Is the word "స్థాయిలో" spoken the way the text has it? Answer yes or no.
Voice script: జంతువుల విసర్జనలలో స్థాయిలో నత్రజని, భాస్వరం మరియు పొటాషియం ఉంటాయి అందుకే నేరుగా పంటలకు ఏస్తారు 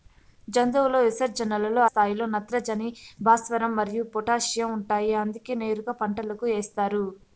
yes